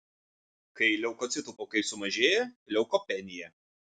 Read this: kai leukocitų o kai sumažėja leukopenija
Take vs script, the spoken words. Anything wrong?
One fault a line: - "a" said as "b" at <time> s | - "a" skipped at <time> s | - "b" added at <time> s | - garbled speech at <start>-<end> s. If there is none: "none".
none